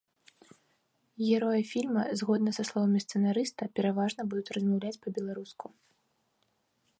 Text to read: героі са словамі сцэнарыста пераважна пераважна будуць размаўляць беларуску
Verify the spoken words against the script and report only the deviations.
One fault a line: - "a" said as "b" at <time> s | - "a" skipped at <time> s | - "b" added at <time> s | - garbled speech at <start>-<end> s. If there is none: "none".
- "фільма згодна" added at 1.7 s
- "пераважна" skipped at 4.2 s
- "па" added at 5.0 s